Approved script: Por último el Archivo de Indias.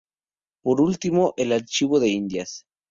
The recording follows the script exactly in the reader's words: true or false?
true